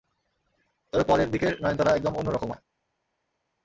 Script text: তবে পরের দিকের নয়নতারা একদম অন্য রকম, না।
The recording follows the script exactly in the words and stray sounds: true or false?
true